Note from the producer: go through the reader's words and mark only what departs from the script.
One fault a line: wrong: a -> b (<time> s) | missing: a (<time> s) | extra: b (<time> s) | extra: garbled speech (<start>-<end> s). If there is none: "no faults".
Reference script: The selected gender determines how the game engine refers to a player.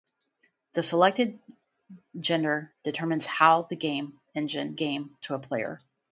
wrong: refers -> game (4.7 s)